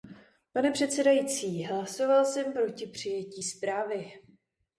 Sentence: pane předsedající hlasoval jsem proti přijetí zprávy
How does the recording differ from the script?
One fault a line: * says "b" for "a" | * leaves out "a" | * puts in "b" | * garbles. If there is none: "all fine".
all fine